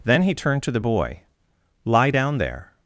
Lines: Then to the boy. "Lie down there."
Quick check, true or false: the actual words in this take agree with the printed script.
false